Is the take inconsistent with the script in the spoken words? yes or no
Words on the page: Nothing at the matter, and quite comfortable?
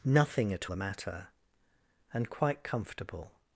no